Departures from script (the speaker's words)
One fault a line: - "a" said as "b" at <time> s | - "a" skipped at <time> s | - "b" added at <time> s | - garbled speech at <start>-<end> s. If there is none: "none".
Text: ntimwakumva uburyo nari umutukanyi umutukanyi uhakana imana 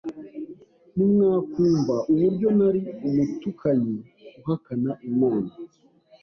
- "umutukanyi" skipped at 4.0 s